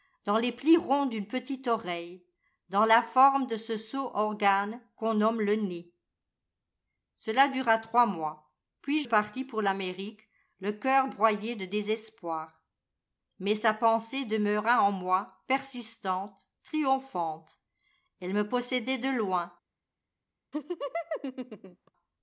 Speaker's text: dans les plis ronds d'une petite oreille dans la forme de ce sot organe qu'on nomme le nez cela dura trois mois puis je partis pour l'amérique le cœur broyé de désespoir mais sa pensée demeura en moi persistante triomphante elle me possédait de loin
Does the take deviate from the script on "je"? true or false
true